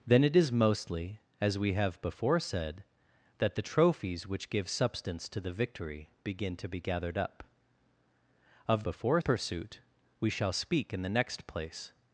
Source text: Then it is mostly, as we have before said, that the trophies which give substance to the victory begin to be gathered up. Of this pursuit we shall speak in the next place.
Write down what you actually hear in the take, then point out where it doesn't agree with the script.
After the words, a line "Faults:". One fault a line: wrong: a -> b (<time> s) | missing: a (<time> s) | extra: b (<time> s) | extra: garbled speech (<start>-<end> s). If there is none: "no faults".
Then it is mostly, as we have before said, that the trophies which give substance to the victory begin to be gathered up. Of before pursuit we shall speak in the next place.
Faults:
wrong: this -> before (8.8 s)